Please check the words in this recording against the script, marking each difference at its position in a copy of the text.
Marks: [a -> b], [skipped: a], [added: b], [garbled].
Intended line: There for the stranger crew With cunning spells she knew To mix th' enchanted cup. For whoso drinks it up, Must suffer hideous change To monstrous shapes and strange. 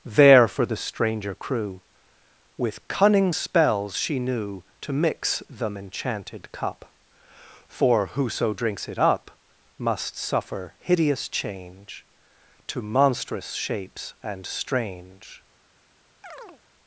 There for the stranger crew With cunning spells she knew To mix [th' -> them] enchanted cup. For whoso drinks it up, Must suffer hideous change To monstrous shapes and strange.